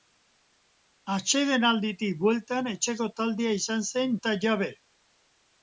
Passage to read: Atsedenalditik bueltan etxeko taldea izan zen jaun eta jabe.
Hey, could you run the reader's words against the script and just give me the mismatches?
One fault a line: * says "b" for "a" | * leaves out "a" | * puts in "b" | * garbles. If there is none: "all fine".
* leaves out "jaun"